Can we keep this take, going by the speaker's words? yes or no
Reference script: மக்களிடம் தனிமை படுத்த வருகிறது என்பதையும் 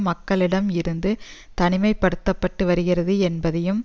no